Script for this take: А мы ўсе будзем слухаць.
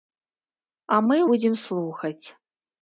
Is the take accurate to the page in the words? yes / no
no